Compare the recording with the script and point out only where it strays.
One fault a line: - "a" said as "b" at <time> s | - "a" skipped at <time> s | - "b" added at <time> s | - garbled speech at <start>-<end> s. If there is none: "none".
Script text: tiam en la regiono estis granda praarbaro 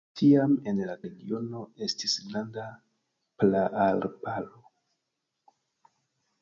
none